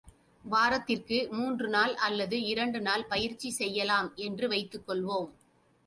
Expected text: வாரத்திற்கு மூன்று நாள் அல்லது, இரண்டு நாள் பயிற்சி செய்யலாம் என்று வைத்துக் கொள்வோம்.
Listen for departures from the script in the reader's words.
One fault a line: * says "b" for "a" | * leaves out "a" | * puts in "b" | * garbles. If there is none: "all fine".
all fine